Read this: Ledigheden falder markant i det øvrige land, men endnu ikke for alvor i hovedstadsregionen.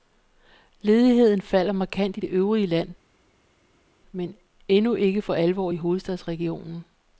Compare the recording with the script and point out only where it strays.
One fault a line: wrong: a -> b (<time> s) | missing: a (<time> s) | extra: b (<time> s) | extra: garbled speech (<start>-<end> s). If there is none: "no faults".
no faults